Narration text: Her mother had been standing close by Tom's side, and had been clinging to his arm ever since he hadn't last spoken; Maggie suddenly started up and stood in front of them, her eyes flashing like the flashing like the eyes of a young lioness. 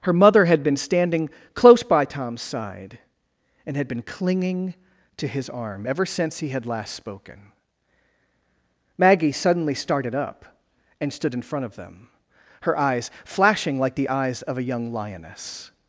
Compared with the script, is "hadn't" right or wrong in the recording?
wrong